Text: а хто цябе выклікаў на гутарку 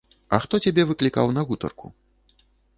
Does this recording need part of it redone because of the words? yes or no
no